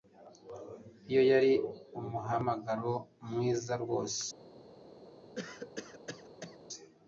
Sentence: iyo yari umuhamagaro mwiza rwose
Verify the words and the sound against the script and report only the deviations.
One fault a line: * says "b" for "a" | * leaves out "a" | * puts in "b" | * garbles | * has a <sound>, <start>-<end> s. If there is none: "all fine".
* has a cough, 5.4-6.6 s